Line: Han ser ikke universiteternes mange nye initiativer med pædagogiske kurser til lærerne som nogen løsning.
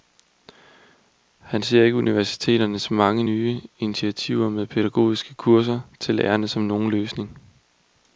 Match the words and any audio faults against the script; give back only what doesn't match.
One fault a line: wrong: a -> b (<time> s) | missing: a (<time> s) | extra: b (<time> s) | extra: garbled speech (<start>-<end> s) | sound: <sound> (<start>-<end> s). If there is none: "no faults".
no faults